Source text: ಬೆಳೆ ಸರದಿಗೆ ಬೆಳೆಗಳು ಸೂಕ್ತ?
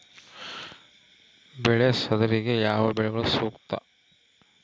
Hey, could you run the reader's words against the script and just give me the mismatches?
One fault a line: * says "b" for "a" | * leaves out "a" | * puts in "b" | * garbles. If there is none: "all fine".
* puts in "ಯಾವ"